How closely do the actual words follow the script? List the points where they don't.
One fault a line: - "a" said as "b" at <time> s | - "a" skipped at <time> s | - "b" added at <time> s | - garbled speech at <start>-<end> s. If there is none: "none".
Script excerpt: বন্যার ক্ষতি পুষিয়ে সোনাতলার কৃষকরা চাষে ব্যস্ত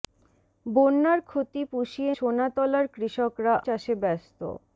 none